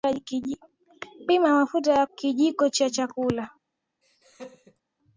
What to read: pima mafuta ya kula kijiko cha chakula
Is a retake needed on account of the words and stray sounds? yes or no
yes